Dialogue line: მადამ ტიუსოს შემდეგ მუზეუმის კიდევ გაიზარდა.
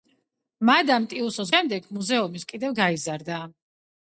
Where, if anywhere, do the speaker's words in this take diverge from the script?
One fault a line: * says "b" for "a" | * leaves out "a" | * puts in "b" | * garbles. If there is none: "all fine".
all fine